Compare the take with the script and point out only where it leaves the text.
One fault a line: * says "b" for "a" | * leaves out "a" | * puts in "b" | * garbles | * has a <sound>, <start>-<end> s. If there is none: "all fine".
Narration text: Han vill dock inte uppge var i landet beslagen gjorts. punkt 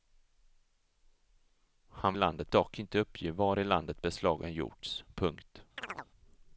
* says "landet" for "vill"
* has a chirp, 5.8-6.1 s